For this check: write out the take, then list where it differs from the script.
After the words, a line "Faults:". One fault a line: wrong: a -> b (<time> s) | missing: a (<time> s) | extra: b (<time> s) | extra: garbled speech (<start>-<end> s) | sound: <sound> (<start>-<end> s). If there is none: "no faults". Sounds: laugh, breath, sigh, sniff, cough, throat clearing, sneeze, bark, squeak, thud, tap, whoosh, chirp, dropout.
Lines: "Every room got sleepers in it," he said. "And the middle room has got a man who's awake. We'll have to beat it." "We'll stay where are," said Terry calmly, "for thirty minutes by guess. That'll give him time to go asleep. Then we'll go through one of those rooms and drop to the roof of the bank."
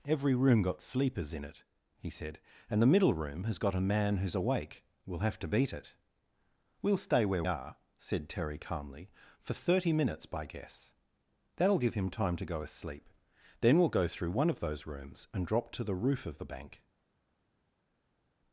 "Every room got sleepers in it," he said. "And the middle room has got a man who's awake. We'll have to beat it." "We'll stay where are," said Terry calmly, "for thirty minutes by guess. That'll give him time to go asleep. Then we'll go through one of those rooms and drop to the roof of the bank."
Faults:
no faults